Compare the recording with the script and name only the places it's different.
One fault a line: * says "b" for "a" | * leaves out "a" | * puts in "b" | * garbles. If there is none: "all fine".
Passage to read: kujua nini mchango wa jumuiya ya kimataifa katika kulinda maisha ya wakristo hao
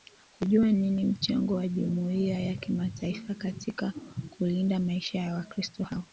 all fine